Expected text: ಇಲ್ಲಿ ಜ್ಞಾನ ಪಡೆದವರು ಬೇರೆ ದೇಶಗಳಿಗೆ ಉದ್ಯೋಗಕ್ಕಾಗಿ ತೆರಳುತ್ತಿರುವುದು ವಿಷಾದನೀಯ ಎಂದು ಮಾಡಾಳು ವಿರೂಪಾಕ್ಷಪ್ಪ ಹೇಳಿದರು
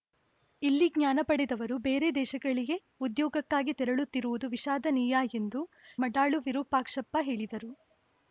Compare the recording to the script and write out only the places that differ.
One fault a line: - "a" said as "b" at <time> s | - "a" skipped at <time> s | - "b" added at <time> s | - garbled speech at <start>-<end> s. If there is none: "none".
none